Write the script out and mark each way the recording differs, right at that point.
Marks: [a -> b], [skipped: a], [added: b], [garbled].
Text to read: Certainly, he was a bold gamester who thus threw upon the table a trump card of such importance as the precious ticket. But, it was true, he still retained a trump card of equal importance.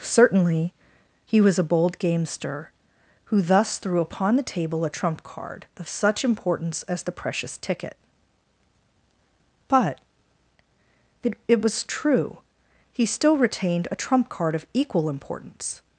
Certainly, he was a bold gamester who thus threw upon the table a trump card of such importance as the precious ticket. But, it [added: it] was true, he still retained a trump card of equal importance.